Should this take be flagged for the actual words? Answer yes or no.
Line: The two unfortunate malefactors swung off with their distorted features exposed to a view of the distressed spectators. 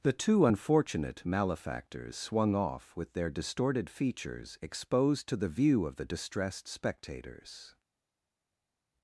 yes